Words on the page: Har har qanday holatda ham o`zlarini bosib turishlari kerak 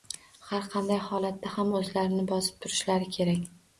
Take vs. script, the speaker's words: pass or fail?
fail